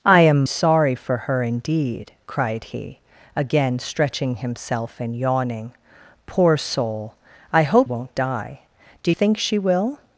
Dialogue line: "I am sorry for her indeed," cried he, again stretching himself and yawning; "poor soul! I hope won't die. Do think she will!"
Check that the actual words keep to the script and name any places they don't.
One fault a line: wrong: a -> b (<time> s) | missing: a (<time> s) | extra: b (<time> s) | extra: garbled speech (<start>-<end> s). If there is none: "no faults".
no faults